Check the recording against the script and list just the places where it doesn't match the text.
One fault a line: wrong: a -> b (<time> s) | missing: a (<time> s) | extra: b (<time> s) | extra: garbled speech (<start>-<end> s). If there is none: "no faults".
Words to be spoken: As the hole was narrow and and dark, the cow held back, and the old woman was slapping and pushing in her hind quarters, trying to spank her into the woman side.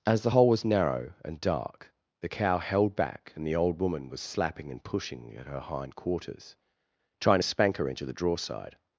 missing: and (1.4 s)
wrong: in -> at (5.4 s)
wrong: woman -> draw (8.1 s)